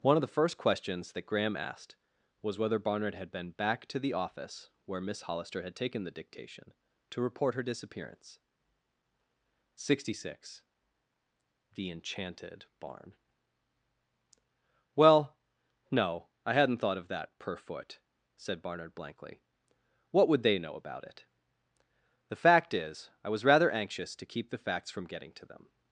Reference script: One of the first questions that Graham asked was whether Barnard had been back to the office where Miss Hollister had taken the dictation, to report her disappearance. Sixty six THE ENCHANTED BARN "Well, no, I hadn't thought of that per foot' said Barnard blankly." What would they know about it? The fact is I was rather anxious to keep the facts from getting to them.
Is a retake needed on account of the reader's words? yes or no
no